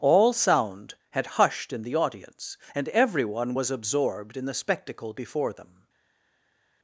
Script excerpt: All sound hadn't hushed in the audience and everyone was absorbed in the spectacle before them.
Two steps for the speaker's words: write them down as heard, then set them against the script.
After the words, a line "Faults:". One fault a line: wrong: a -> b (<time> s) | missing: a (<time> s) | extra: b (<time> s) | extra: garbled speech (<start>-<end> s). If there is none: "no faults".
All sound had hushed in the audience and everyone was absorbed in the spectacle before them.
Faults:
wrong: hadn't -> had (1.1 s)